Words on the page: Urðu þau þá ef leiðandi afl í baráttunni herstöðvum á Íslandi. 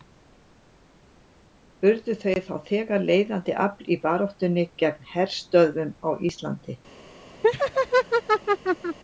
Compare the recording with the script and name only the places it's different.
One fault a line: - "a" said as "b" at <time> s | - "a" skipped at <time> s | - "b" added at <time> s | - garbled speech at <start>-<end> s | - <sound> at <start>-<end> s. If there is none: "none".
- "ef" said as "þegar" at 2.7 s
- "gegn" added at 4.8 s
- laugh at 7.4-9.0 s